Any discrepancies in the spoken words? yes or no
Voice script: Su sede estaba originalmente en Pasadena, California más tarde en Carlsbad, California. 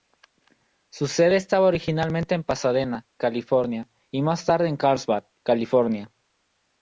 yes